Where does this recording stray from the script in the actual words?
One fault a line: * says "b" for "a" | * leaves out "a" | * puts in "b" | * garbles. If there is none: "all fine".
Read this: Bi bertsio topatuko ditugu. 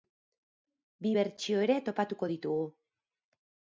* puts in "ere"